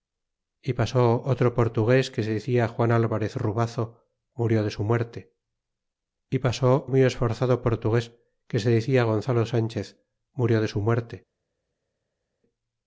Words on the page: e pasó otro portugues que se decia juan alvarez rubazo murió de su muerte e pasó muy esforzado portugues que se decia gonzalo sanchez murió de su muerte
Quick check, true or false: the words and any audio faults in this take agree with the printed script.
true